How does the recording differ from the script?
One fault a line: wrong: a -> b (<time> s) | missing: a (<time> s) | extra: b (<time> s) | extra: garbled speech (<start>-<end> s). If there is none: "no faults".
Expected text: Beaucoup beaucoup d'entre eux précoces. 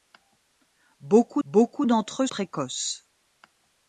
no faults